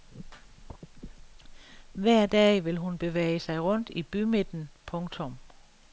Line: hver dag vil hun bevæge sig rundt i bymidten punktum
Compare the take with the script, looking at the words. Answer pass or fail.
pass